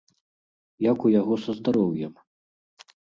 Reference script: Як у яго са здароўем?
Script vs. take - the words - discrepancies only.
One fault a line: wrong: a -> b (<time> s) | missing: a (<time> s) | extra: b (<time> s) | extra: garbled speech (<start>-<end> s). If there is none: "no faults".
no faults